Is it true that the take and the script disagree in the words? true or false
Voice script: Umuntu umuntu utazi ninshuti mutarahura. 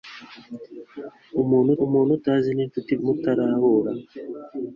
false